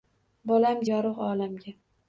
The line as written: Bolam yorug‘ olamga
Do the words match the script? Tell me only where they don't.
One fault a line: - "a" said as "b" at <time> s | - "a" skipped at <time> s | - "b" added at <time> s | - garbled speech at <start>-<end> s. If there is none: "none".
none